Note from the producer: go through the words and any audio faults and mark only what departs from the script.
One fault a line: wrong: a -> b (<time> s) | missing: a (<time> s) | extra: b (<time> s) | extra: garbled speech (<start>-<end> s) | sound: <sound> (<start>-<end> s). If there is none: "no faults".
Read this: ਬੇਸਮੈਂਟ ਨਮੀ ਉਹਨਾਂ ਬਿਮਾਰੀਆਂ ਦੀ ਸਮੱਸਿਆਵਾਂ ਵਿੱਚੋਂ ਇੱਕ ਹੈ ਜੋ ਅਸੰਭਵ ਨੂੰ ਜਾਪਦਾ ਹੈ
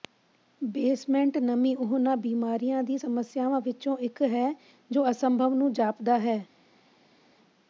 no faults